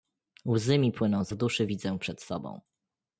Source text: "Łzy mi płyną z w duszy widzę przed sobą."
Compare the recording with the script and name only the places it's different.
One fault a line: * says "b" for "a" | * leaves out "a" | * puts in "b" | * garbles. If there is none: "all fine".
all fine